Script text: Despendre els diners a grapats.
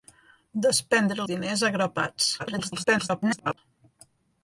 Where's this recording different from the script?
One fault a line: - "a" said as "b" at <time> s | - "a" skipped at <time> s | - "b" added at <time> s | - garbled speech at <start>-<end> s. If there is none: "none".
- "els" skipped at 1.2 s
- garbled speech at 2.4-3.6 s